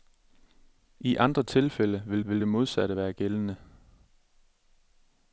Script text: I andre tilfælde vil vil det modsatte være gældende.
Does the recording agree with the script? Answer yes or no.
yes